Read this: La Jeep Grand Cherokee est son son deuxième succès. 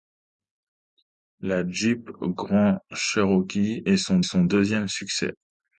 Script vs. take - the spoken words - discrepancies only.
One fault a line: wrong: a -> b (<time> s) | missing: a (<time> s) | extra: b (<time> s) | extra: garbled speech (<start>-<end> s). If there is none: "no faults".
no faults